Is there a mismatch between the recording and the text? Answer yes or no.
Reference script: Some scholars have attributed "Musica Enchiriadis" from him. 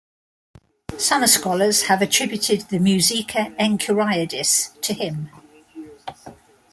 yes